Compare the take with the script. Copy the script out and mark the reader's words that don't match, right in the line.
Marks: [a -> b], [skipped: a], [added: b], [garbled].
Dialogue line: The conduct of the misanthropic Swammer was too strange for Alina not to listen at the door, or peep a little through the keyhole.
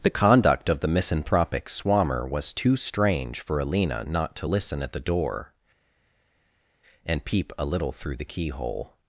The conduct of the misanthropic Swammer was too strange for Alina not to listen at the door, [or -> and] peep a little through the keyhole.